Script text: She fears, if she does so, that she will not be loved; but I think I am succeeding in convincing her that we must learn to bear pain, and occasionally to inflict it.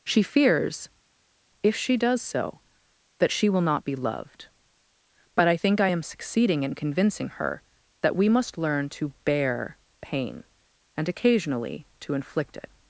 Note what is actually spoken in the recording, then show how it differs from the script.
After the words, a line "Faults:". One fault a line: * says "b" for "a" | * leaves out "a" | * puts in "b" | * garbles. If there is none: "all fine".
She fears, if she does so, that she will not be loved; but I think I am succeeding in convincing her that we must learn to bear pain, and occasionally to inflict it.
Faults:
all fine